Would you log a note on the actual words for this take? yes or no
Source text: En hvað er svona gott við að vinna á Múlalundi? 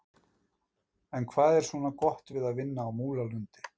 no